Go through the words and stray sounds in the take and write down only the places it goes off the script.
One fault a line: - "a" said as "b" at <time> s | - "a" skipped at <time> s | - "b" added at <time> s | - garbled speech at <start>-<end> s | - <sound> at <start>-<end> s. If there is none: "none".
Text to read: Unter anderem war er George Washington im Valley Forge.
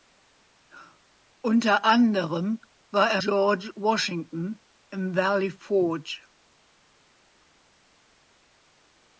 none